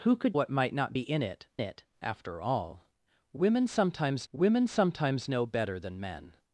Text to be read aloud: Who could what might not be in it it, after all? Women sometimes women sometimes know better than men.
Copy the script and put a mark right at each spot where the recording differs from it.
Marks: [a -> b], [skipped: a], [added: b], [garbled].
Who could what might not be in it it, after all? Women sometimes women sometimes know better than men.